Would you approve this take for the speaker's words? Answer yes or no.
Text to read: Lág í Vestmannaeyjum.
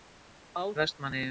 yes